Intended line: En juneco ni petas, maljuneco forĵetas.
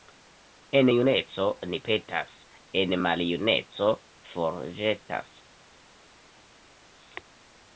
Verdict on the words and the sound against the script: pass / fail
fail